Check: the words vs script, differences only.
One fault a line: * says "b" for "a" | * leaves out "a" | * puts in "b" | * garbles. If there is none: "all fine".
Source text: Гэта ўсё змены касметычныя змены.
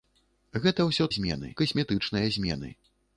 all fine